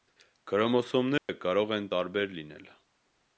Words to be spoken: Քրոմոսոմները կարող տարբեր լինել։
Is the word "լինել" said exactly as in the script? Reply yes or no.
yes